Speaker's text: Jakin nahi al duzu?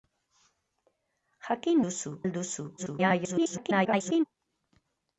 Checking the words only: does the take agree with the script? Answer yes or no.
no